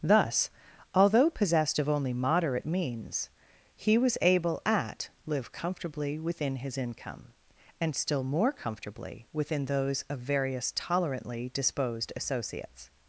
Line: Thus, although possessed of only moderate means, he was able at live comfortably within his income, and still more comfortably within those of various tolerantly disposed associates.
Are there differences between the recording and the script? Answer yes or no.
no